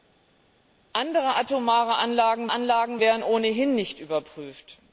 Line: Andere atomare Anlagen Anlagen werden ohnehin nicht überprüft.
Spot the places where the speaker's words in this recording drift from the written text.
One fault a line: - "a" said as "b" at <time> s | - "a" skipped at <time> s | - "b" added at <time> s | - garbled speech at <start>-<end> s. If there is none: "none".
none